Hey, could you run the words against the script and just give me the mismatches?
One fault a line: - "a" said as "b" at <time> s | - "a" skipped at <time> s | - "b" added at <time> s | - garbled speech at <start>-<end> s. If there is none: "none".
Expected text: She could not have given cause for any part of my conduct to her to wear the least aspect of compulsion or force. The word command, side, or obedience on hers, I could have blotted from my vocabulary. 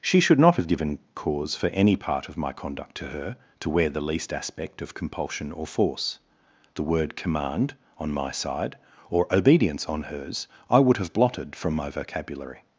- "could" said as "should" at 0.2 s
- "on my" added at 8.0 s
- "could" said as "would" at 10.8 s